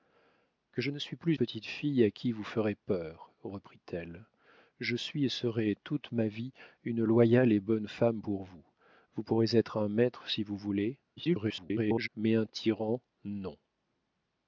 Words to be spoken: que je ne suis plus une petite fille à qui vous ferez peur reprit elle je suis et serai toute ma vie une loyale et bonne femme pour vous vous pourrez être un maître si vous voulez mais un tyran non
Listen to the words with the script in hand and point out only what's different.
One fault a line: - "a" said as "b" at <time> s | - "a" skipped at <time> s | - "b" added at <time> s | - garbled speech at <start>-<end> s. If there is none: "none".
- "une" skipped at 1.4 s
- garbled speech at 11.2-12.1 s